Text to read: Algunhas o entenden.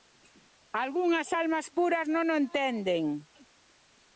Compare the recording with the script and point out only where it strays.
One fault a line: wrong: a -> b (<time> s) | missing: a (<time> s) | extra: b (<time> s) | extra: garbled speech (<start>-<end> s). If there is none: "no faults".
extra: almas puras non (1.4 s)